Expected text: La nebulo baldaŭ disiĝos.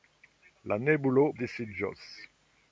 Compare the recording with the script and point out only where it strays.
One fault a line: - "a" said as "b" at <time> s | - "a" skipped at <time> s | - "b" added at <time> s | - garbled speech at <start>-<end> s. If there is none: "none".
- "baldaŭ" skipped at 1.3 s